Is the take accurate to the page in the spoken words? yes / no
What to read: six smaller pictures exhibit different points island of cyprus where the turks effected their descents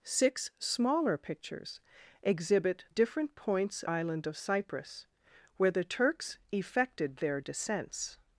yes